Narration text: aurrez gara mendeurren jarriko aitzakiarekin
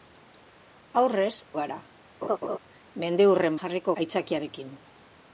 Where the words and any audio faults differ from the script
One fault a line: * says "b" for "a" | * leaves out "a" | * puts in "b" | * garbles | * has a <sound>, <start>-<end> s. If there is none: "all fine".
* has a laugh, 2.2-2.6 s